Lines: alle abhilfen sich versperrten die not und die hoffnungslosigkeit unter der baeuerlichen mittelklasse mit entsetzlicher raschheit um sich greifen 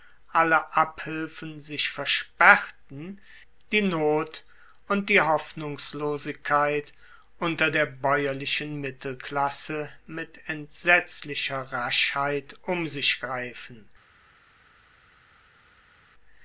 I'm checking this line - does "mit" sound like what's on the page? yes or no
yes